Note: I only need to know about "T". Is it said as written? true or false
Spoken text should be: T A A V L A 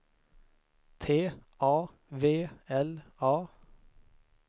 true